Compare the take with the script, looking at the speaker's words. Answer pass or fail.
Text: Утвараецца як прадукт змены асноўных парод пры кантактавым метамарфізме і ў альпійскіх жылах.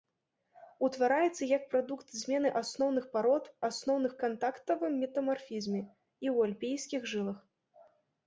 fail